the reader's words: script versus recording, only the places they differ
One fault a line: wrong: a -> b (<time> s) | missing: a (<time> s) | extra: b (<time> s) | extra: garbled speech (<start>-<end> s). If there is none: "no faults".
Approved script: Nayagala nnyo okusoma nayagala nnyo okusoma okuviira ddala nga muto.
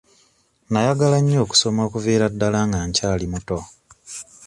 missing: nayagala nnyo okusoma (1.8 s)
extra: nkyali (2.9 s)